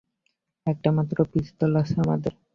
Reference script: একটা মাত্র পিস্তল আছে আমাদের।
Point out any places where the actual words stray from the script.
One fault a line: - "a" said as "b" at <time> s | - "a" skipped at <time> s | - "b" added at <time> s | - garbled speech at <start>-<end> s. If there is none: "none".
none